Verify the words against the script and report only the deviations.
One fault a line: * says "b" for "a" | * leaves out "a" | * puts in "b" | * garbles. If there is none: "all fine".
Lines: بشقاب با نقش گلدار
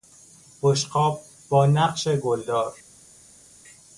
all fine